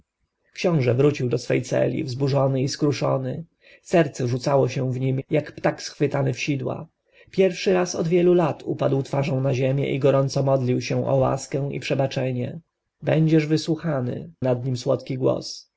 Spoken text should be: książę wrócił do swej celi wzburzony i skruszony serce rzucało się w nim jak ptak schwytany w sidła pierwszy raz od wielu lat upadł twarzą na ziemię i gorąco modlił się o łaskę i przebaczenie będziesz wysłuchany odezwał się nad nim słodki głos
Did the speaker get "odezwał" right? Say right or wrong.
wrong